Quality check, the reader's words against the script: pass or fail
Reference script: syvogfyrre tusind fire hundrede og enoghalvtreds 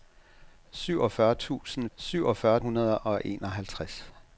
fail